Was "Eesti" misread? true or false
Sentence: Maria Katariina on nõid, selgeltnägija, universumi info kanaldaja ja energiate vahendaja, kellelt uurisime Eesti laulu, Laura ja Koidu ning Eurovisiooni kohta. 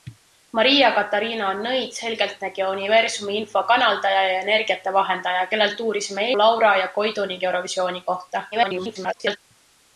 true